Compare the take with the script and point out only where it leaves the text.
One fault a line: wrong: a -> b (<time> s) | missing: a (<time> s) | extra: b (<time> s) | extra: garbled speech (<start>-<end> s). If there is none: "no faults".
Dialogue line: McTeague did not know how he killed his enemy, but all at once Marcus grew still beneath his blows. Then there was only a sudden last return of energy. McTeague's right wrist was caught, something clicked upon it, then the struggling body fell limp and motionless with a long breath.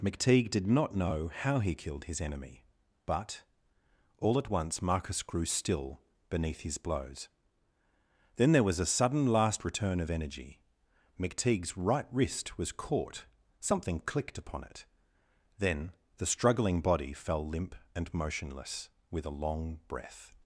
missing: only (8.8 s)